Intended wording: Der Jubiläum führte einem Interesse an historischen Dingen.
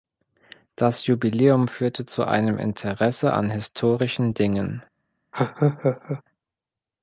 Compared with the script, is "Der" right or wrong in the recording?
wrong